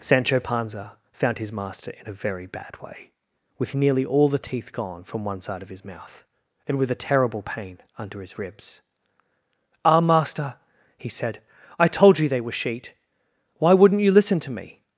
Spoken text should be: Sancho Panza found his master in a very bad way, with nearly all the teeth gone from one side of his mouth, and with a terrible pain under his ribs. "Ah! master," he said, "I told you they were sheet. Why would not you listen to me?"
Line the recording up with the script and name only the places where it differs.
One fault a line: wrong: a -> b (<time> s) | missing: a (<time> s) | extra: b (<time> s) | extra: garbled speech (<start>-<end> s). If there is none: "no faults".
no faults